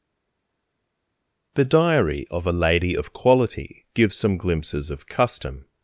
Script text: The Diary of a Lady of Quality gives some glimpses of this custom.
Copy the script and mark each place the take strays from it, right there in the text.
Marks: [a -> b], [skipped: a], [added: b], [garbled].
The Diary of a Lady of Quality gives some glimpses of [skipped: this] custom.